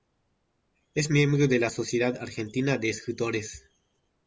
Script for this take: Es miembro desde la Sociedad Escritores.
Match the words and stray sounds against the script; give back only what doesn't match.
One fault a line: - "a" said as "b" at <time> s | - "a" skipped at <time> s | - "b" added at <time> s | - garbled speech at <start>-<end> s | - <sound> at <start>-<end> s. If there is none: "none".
- "desde" said as "de" at 1.5 s
- "Argentina de" added at 2.2 s